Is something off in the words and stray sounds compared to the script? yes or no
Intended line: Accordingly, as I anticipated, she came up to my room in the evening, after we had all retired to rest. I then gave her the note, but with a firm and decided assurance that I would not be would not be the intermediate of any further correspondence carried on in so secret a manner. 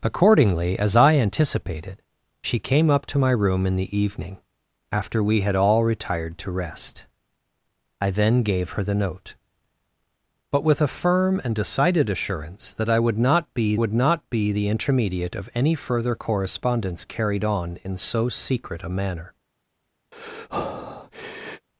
yes